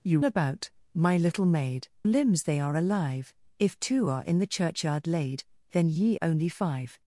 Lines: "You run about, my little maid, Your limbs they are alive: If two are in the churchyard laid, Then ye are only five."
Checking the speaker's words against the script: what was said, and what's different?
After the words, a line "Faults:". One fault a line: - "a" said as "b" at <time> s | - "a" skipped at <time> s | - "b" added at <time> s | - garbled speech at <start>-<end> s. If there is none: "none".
"You about, my little maid, Limbs they are alive: If two are in the churchyard laid, Then ye only five."
Faults:
- "run" skipped at 0.2 s
- "Your" skipped at 1.9 s
- "are" skipped at 6.2 s